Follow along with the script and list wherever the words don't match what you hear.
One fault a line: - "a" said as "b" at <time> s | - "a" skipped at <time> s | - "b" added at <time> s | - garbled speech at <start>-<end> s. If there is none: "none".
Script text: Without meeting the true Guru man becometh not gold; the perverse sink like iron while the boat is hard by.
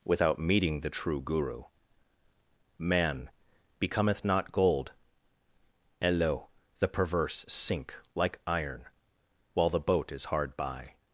- "and lo" added at 6.0 s